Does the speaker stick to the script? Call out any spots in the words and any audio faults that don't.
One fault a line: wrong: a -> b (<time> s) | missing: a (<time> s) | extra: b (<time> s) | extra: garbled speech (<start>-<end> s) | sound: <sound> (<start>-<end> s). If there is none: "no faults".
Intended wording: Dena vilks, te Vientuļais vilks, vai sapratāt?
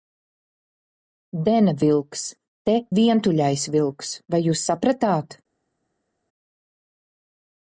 extra: jūs (4.5 s)